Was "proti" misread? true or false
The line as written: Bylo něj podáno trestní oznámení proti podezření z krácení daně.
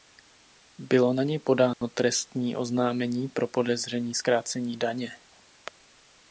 true